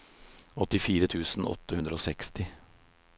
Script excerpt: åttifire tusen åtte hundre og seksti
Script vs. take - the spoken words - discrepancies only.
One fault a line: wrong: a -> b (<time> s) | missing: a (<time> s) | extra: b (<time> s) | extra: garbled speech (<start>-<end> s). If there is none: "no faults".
no faults